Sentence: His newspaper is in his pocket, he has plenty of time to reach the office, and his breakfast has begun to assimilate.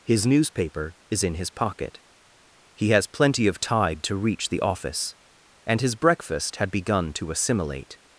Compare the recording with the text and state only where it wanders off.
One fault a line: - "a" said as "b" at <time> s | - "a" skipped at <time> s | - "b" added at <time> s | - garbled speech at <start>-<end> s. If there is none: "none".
- "time" said as "tide" at 3.6 s
- "has" said as "had" at 6.5 s